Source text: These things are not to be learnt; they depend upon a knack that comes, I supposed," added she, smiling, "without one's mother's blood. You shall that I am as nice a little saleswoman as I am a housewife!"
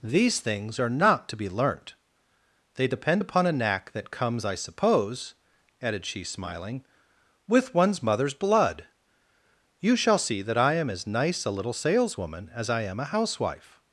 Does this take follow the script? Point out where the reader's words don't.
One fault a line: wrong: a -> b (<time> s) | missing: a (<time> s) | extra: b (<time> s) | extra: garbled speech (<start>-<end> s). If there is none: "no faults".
wrong: supposed -> suppose (4.5 s)
wrong: without -> with (7.5 s)
extra: see (10.2 s)